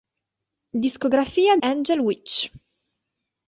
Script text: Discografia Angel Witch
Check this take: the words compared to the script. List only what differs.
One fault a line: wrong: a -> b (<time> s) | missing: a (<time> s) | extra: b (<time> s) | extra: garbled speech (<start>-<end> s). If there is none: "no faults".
no faults